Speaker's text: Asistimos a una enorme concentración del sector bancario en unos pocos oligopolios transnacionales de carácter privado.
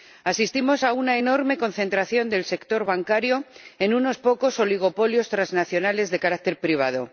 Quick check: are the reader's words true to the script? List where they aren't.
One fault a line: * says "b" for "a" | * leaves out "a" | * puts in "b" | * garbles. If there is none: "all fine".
all fine